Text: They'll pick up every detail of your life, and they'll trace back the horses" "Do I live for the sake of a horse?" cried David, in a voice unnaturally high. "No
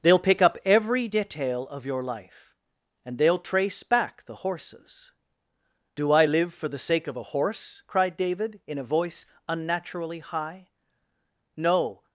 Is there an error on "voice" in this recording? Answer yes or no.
no